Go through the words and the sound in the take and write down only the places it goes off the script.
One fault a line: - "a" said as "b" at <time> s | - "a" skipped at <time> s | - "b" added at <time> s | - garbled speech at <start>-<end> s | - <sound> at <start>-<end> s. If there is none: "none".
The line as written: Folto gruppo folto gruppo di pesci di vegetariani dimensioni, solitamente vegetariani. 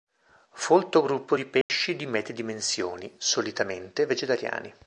- "folto gruppo" skipped at 1.4 s
- dropout at 1.6-1.7 s
- "vegetariani" said as "medie" at 2.1 s